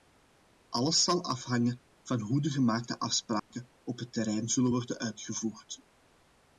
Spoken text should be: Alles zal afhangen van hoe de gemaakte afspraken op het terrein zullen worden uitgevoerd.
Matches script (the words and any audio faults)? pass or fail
fail